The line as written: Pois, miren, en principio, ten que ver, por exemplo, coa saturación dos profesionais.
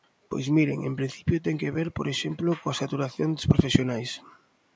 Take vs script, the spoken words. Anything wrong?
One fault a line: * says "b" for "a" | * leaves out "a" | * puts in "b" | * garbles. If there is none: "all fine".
all fine